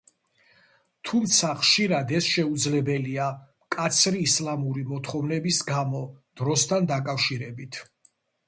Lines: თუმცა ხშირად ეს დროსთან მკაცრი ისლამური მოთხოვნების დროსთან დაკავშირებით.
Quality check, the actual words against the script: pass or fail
fail